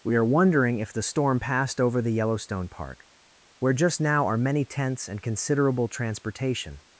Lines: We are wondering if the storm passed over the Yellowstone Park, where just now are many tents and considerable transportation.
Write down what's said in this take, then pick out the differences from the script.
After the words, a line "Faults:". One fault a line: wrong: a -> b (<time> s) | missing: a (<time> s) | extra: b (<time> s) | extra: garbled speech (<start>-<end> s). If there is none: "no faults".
We are wondering if the storm passed over the Yellowstone Park, where just now are many tents and considerable transportation.
Faults:
no faults